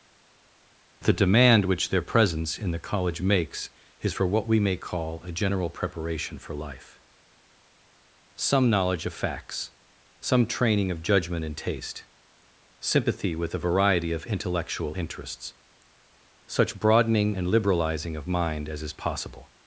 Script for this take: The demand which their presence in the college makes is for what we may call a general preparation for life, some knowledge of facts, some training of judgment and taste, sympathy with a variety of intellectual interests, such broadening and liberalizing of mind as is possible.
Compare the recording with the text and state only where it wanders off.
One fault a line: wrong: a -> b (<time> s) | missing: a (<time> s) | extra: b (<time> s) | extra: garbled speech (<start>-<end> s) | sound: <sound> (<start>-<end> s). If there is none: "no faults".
no faults